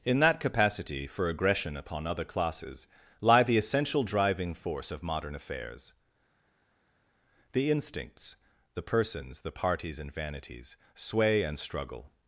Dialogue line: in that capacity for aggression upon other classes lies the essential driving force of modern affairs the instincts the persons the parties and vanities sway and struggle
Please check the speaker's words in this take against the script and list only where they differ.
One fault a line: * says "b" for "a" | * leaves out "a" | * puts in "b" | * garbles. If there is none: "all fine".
* says "lie" for "lies"